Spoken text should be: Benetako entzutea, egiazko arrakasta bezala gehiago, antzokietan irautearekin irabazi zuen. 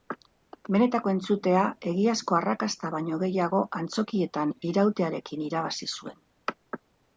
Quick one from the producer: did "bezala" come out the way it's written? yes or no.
no